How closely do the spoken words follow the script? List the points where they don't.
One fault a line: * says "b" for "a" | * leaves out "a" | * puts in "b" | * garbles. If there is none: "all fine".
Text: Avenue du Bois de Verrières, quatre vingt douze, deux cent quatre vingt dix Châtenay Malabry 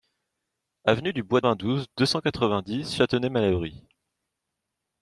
* leaves out "de Verrières quatre"